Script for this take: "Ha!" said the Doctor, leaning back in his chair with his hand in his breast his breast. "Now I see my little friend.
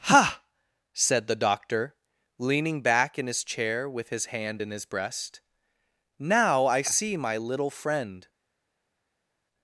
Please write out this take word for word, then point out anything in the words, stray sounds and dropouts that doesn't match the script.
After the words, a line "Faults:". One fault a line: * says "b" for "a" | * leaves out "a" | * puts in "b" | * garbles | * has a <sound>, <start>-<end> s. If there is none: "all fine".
"Ha!" said the Doctor, leaning back in his chair with his hand in his breast. "Now I see my little friend.
Faults:
* leaves out "his breast"